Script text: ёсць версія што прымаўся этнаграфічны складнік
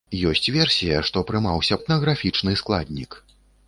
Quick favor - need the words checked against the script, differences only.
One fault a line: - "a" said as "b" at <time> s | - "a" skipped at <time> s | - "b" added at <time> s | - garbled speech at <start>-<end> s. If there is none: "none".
none